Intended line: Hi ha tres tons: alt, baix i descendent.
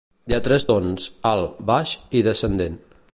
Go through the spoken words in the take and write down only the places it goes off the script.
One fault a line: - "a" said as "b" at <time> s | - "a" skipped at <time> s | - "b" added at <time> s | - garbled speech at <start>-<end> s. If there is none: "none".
none